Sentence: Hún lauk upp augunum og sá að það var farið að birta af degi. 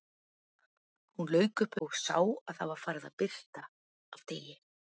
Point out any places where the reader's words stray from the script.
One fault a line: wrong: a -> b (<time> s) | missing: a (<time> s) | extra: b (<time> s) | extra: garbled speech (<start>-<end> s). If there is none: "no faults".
missing: augunum (1.8 s)